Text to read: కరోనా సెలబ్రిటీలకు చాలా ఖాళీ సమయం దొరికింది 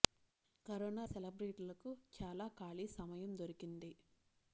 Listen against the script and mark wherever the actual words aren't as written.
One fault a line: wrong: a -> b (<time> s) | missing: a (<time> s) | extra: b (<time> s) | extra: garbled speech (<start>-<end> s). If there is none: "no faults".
no faults